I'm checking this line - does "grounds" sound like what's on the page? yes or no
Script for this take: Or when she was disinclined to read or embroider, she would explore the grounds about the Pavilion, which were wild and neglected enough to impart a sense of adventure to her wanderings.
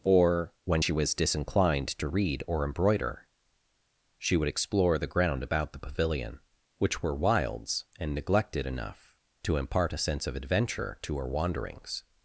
no